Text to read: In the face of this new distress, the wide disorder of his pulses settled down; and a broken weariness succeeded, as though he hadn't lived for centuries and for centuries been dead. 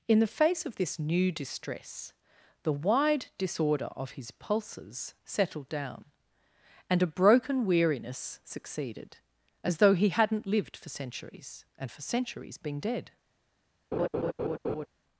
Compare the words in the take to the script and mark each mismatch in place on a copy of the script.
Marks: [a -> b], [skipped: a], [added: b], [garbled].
In the face of this new distress, the wide disorder of his pulses settled down; and a broken weariness succeeded, as though he hadn't lived for centuries and for centuries been dead.